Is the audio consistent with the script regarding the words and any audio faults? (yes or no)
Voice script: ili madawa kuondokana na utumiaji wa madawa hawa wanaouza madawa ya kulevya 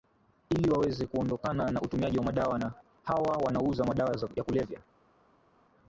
no